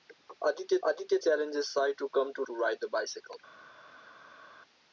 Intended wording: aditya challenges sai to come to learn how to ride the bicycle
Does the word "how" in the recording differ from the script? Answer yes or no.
yes